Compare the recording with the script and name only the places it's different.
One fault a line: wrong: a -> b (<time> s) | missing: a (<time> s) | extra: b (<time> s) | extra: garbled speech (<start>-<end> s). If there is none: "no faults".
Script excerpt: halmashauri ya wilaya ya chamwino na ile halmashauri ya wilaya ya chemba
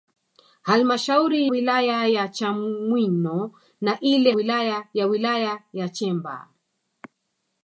missing: ya (1.5 s)
wrong: halmashauri -> wilaya (4.3 s)